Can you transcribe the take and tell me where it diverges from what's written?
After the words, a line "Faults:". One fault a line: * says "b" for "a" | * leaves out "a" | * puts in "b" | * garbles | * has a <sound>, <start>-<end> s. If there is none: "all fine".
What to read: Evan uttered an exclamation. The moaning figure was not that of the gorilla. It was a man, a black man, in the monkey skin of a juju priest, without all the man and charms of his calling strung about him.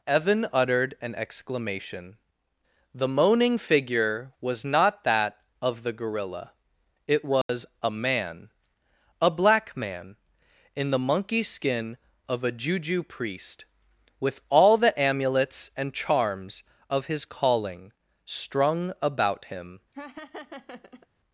Evan uttered an exclamation. The moaning figure was not that of the gorilla. It was a man, a black man, in the monkey skin of a juju priest, with all the amulets and charms of his calling strung about him.
Faults:
* has a dropout, 7.4-7.5 s
* says "with" for "without"
* says "amulets" for "man"
* has a laugh, 19.9-21.1 s